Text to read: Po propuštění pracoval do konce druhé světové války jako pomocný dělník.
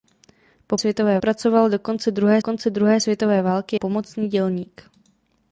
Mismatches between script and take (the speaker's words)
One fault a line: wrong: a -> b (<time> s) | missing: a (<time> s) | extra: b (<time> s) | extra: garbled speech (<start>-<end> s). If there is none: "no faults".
wrong: propuštění -> světové (0.8 s)
extra: konce druhé (2.4 s)
missing: jako (3.8 s)